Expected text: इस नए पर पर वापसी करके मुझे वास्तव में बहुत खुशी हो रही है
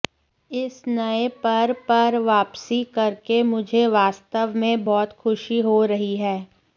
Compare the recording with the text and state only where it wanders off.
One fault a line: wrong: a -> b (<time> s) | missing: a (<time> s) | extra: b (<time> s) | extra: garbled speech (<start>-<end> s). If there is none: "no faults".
no faults